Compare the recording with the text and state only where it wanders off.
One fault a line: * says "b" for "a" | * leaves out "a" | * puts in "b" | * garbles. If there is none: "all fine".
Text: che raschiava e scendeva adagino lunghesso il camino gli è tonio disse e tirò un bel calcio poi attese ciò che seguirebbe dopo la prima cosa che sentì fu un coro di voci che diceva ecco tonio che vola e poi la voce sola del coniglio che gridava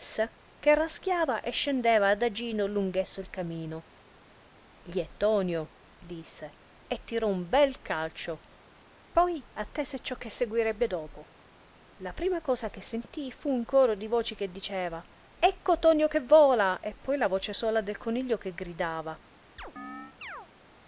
all fine